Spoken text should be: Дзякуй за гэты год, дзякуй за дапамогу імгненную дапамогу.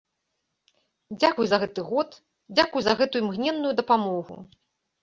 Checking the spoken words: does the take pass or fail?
fail